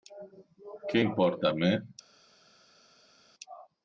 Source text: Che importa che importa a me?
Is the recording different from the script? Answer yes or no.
yes